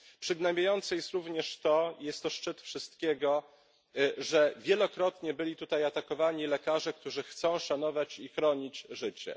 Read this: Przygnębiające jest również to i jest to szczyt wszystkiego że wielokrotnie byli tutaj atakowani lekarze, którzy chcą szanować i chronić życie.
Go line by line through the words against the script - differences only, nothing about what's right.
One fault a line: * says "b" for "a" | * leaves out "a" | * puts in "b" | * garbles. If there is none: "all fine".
all fine